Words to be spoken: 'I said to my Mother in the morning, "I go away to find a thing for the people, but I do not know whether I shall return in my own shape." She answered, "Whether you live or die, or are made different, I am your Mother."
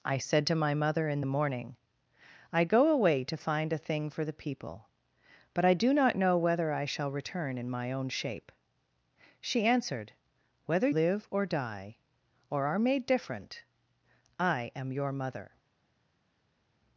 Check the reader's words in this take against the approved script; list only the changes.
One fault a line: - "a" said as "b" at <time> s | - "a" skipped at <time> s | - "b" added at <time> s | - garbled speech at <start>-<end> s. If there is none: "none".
- "you" skipped at 10.9 s